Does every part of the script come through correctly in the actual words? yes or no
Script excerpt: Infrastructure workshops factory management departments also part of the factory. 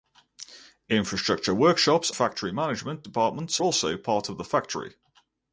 yes